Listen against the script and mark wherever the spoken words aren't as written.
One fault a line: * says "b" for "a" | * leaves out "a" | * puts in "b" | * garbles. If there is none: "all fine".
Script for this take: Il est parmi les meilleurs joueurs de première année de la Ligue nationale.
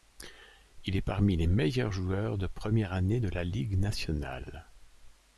all fine